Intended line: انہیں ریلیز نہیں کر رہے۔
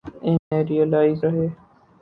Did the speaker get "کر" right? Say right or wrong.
wrong